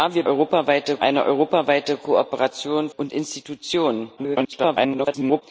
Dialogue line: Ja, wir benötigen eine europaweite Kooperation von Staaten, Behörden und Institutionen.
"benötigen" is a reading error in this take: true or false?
true